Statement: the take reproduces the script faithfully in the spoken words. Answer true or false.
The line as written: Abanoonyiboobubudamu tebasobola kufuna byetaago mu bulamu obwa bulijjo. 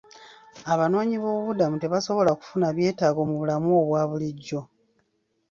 true